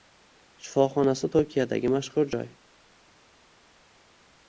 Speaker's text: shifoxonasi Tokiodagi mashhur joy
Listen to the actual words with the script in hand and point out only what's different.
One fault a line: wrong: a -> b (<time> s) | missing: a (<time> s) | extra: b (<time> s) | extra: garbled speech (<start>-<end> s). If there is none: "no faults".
no faults